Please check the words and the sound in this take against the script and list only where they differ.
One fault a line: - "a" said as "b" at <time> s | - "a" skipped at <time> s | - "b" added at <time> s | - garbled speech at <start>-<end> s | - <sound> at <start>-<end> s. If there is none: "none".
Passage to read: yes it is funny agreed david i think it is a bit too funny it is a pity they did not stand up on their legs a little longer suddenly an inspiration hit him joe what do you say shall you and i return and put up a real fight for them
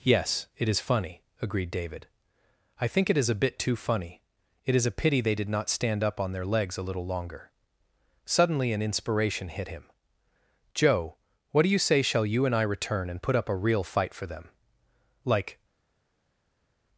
- "like" added at 15.2 s